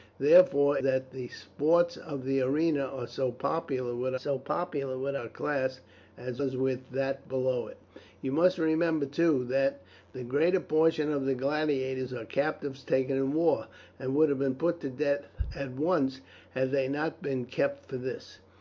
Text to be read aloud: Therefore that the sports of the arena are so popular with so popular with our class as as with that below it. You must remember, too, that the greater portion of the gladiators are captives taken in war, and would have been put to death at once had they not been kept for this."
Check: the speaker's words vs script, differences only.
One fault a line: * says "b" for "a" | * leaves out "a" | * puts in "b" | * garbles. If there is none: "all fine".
all fine